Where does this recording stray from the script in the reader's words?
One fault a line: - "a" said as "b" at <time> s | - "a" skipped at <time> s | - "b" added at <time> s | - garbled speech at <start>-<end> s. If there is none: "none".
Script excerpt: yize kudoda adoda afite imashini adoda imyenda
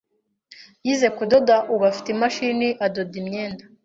- "adoda" said as "ubu" at 1.7 s